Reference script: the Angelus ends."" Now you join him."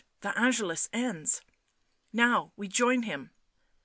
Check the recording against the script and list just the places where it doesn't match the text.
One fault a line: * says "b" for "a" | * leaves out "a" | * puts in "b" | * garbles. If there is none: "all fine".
* says "we" for "you"